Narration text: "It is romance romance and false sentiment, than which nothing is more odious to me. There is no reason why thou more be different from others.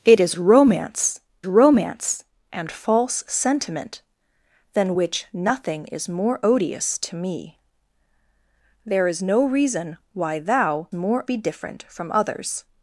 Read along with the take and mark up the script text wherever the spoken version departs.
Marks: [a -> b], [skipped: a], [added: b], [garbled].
"It is romance romance and false sentiment, than which nothing is more odious to me. There is no reason why thou more be different from others.